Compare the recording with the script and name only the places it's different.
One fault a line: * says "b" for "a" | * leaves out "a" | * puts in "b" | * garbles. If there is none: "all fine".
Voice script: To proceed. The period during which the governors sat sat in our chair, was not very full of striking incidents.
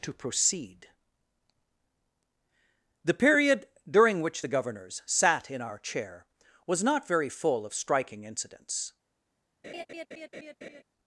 * leaves out "sat"